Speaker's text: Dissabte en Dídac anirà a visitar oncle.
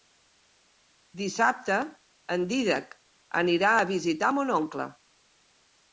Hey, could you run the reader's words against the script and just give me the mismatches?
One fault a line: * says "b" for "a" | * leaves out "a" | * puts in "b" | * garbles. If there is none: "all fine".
* puts in "mon"